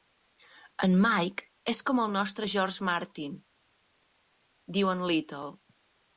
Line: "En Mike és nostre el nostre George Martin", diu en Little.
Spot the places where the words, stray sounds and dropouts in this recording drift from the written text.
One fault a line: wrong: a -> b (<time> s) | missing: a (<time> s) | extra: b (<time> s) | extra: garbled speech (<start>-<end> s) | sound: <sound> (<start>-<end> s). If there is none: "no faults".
wrong: nostre -> com (1.9 s)